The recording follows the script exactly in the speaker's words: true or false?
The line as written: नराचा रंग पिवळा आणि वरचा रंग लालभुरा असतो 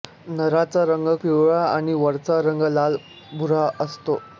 true